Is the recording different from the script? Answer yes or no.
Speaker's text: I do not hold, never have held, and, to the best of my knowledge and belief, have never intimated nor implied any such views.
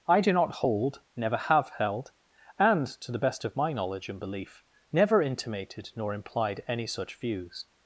yes